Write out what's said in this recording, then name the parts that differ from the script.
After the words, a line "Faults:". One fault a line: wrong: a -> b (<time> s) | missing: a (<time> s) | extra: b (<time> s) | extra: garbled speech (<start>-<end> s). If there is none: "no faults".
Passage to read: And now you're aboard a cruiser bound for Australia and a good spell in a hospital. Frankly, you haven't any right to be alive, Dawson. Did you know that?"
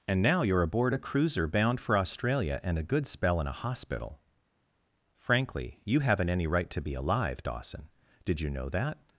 And now you're aboard a cruiser bound for Australia and a good spell in a hospital. Frankly, you haven't any right to be alive, Dawson. Did you know that?"
Faults:
no faults